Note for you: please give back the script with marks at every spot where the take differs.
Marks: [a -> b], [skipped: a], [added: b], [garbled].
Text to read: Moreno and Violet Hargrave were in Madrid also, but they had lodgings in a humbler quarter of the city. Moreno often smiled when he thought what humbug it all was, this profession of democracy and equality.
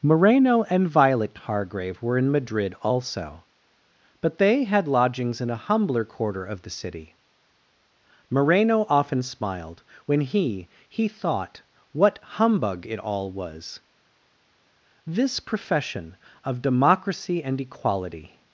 Moreno and Violet Hargrave were in Madrid also, but they had lodgings in a humbler quarter of the city. Moreno often smiled when he [added: he] thought what humbug it all was, this profession of democracy and equality.